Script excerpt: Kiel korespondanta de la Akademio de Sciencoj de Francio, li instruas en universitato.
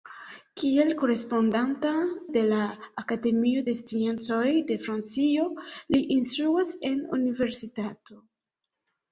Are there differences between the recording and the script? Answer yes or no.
no